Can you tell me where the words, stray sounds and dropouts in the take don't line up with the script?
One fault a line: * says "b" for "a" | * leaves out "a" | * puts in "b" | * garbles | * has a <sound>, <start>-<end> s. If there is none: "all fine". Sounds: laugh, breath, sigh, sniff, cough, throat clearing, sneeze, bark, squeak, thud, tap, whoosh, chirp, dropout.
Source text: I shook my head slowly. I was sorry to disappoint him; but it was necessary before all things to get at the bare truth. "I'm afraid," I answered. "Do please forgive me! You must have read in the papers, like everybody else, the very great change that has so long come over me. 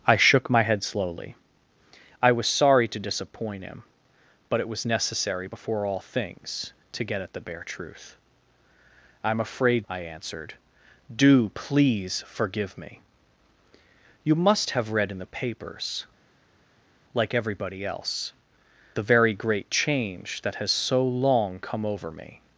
all fine